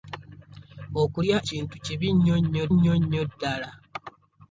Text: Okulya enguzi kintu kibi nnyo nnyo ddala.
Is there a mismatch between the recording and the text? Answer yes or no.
yes